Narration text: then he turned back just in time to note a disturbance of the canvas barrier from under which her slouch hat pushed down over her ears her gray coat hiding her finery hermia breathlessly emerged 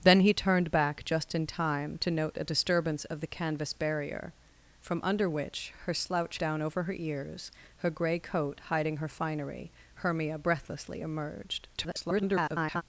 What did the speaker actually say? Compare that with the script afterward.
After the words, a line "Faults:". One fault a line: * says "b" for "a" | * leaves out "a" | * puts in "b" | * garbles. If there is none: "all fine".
then he turned back just in time to note a disturbance of the canvas barrier from under which her slouch down over her ears her gray coat hiding her finery hermia breathlessly emerged [garbled]
Faults:
* leaves out "hat pushed"
* garbles